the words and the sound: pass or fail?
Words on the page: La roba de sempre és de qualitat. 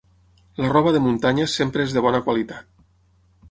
fail